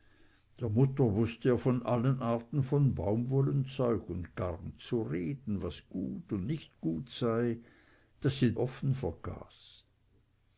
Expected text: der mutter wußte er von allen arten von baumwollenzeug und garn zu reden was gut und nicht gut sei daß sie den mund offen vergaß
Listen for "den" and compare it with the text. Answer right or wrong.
wrong